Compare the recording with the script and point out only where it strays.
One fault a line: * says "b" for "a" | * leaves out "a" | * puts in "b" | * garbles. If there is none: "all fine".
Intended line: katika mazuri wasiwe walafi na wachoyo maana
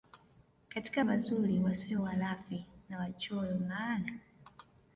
all fine